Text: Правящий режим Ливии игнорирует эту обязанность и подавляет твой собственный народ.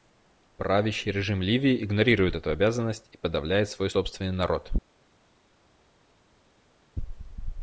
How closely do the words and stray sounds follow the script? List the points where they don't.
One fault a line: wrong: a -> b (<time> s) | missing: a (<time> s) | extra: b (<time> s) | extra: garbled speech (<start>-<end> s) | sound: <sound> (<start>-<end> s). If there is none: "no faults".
wrong: твой -> свой (3.7 s)